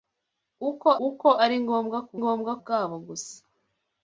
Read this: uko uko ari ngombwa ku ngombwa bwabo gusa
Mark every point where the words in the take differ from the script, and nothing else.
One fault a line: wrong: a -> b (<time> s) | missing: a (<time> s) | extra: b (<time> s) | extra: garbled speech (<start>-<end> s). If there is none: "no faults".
no faults